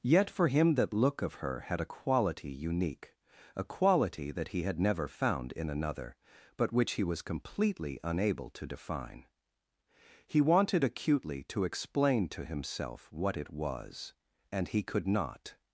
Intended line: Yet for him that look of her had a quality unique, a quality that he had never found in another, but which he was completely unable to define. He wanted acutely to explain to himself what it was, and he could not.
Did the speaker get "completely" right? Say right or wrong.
right